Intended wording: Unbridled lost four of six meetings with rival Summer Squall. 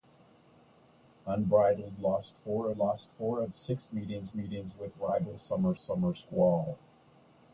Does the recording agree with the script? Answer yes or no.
no